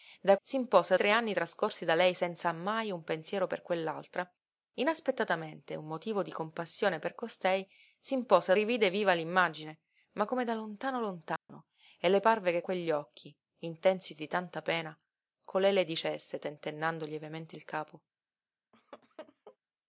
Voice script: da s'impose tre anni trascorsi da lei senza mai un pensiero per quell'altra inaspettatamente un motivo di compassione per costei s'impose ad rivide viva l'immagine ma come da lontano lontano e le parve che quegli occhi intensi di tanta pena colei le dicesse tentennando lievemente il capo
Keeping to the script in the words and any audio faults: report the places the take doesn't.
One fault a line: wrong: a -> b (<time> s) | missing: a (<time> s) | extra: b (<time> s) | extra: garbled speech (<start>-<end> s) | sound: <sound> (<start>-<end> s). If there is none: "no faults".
sound: dropout (11.4-11.5 s)
sound: laugh (18.7-19.6 s)